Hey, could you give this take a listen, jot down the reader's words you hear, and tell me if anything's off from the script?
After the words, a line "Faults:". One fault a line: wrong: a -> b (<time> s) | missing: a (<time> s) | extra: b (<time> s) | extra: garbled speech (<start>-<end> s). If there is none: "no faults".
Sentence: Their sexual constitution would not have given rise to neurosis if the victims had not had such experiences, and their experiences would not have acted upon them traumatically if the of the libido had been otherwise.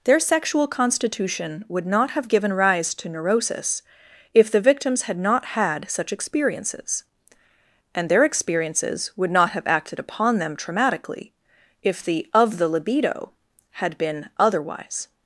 Their sexual constitution would not have given rise to neurosis if the victims had not had such experiences, and their experiences would not have acted upon them traumatically if the of the libido had been otherwise.
Faults:
no faults